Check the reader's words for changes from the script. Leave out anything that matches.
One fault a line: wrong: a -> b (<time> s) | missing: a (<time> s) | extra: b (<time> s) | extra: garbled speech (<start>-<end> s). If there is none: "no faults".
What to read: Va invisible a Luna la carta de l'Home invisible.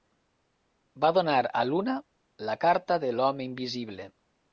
wrong: invisible -> donar (1.2 s)